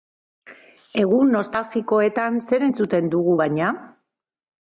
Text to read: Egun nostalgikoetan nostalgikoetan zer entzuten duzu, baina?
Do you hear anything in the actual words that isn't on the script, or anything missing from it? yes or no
yes